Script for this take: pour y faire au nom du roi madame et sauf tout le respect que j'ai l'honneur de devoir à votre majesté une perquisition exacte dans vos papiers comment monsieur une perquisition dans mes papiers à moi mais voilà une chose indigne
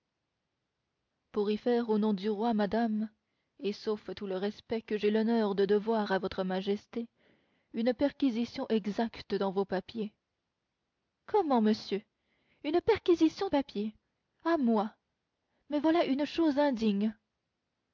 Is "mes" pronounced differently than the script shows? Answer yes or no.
yes